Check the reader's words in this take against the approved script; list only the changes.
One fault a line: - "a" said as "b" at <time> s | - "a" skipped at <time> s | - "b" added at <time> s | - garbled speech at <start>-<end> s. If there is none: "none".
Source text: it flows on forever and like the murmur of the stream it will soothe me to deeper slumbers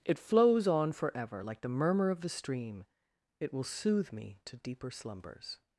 - "and" skipped at 1.4 s